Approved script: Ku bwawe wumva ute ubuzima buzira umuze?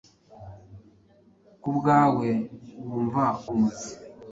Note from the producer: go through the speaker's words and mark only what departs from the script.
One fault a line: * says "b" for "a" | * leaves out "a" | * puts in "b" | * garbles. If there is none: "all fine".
* leaves out "ute ubuzima buzira"